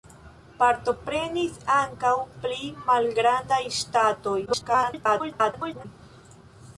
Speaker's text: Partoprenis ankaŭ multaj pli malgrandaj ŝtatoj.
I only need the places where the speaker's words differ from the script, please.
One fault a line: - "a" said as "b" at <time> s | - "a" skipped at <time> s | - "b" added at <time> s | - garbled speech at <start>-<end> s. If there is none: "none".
- "multaj" skipped at 2.1 s
- garbled speech at 4.5-5.9 s